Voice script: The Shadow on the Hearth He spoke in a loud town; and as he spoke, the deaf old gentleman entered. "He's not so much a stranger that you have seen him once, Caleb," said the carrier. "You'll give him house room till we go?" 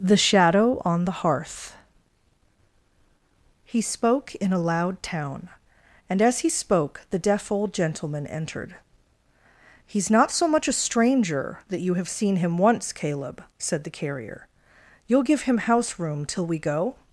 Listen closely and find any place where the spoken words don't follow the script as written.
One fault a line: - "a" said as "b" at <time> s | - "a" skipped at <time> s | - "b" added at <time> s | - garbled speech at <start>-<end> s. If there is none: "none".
none